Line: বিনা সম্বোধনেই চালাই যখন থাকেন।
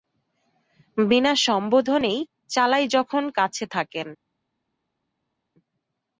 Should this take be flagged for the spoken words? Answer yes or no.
yes